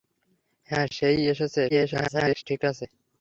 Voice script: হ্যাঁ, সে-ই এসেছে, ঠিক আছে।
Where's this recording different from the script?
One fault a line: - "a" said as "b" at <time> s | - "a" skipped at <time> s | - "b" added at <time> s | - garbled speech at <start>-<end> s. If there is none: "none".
- garbled speech at 1.7-2.4 s